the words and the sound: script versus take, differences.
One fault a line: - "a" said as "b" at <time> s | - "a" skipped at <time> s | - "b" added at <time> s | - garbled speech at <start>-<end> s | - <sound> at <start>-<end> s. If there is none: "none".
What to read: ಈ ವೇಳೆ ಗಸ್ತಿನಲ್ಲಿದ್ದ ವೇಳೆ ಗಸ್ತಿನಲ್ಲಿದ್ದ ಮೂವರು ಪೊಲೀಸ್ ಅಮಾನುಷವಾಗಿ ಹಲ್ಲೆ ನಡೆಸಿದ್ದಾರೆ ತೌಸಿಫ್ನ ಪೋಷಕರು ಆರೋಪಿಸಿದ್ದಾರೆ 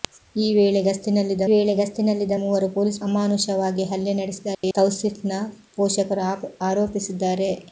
- dropout at 4.5-4.6 s